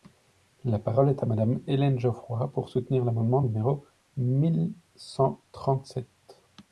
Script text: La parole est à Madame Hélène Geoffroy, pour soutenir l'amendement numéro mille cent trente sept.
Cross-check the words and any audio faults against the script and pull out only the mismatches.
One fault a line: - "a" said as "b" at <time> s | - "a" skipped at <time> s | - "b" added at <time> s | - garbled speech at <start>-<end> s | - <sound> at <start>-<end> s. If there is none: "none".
none